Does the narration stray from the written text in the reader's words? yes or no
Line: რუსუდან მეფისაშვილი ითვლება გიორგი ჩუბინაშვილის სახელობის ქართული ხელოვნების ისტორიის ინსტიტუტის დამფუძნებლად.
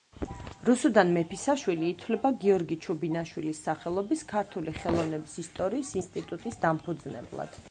no